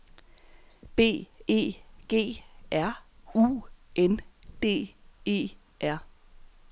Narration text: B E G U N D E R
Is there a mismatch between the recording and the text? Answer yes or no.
yes